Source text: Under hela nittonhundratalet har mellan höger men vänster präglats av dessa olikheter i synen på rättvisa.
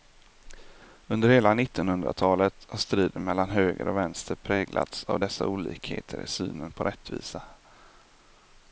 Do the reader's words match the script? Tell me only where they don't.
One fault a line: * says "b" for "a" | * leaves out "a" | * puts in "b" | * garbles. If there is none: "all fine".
* puts in "striden"
* says "och" for "men"